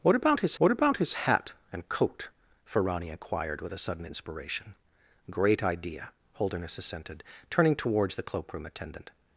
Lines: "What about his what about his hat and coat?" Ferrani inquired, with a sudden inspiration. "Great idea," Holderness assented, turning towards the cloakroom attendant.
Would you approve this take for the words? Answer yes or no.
yes